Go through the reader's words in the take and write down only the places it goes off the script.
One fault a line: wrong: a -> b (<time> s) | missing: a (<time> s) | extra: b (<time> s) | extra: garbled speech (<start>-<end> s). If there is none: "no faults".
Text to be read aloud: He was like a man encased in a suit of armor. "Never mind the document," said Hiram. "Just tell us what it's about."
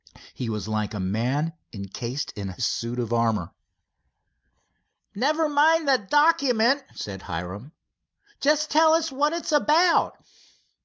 no faults